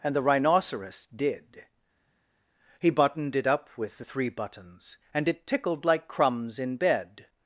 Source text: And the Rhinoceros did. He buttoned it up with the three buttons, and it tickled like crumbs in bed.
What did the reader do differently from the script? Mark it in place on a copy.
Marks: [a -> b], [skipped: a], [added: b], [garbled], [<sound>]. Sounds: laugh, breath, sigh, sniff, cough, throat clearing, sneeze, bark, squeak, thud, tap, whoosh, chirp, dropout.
And the Rhinoceros did. He buttoned it up with the three buttons, and it tickled like crumbs in bed.